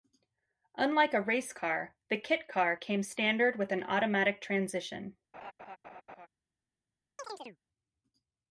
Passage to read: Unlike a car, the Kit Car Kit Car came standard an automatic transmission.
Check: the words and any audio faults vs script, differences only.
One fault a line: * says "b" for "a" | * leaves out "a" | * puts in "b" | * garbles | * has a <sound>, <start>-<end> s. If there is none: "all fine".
* puts in "race"
* leaves out "Kit Car"
* puts in "with"
* has a laugh, 5.3-6.3 s
* has a chirp, 7.2-7.6 s